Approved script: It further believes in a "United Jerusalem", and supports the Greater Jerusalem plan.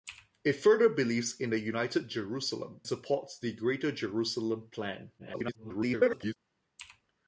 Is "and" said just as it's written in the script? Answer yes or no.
no